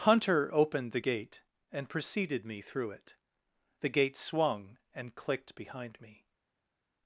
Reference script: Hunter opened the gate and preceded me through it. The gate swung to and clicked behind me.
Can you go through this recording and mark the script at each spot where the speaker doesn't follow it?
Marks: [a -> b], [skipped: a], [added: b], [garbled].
Hunter opened the gate and preceded me through it. The gate swung [skipped: to] and clicked behind me.